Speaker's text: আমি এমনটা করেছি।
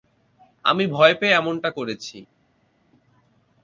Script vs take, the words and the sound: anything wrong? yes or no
yes